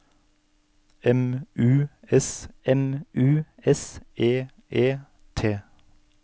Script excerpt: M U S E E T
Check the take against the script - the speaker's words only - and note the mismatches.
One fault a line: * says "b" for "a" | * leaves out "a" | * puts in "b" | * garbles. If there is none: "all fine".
* puts in "m U S"